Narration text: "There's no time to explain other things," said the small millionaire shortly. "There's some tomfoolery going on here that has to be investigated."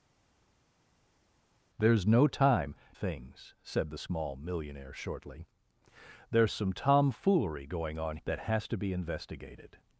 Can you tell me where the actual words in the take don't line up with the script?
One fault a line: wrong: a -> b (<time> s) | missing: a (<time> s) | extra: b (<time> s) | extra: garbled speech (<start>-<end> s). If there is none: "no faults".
missing: to explain other (2.7 s)
missing: here (8.2 s)